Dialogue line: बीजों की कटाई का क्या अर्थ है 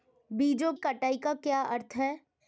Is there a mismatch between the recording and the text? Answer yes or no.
yes